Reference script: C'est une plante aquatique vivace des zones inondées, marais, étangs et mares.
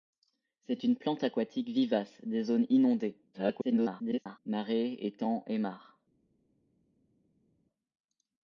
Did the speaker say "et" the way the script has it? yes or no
yes